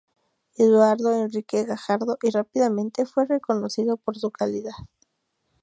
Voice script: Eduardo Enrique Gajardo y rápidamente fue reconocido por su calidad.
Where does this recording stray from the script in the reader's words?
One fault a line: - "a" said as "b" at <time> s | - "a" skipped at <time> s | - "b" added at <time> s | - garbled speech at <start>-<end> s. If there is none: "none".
none